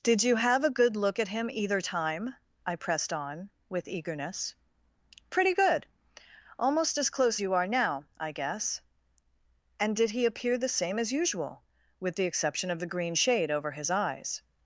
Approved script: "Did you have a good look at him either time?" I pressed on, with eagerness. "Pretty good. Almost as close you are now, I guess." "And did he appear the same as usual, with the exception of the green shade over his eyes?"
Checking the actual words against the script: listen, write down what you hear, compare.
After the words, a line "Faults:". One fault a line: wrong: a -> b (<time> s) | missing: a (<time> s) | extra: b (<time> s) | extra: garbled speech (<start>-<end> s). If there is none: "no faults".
"Did you have a good look at him either time?" I pressed on, with eagerness. "Pretty good. Almost as close you are now, I guess." "And did he appear the same as usual, with the exception of the green shade over his eyes?"
Faults:
no faults